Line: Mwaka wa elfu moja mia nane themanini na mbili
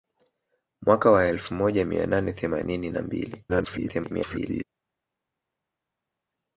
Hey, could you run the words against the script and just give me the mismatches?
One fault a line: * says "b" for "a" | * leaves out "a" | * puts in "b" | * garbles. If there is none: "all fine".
* garbles